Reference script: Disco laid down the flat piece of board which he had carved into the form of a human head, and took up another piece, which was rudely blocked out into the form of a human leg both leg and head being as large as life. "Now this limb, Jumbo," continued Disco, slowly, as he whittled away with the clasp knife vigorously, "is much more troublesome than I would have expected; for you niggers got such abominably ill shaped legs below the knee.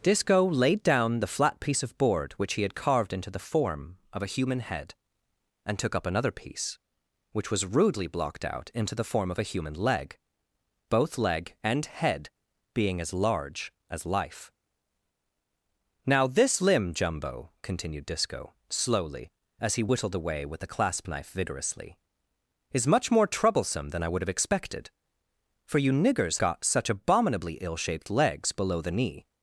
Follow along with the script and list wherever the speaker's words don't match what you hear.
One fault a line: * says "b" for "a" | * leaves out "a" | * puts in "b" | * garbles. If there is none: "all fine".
all fine